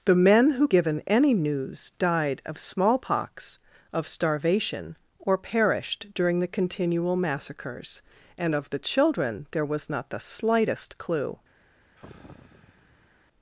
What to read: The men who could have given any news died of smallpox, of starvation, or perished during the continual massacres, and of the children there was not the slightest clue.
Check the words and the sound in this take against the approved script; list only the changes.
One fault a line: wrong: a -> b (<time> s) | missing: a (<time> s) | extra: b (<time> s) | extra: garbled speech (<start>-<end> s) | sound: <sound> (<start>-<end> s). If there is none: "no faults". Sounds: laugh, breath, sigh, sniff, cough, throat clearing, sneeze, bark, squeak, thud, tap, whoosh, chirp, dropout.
missing: could have (0.7 s)
sound: sigh (12.0-13.1 s)